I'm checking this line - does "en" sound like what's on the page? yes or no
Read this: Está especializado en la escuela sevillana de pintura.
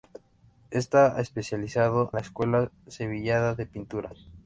no